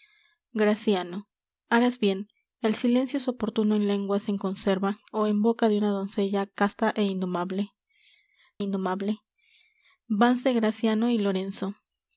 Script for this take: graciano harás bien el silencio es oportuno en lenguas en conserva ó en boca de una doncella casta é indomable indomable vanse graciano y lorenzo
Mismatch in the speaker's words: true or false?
false